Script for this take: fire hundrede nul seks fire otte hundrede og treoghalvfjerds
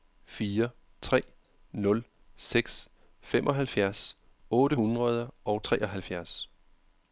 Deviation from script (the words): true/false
true